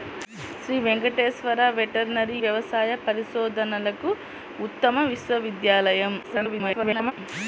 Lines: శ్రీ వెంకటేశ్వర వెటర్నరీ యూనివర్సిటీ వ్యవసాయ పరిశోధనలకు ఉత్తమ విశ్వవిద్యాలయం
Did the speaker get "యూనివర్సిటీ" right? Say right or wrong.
wrong